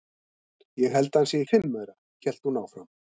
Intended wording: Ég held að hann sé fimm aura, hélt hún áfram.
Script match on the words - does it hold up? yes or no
yes